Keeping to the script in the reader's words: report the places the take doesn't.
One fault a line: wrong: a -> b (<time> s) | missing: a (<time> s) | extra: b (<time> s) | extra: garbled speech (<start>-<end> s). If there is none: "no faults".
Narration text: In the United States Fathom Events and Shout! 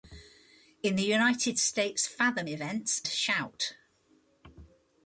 missing: and (3.0 s)